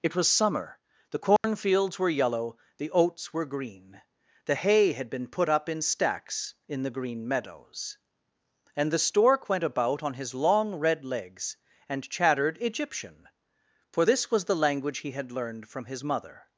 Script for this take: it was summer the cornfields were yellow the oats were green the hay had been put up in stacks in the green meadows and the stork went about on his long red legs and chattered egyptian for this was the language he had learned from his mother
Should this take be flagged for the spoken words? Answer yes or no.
no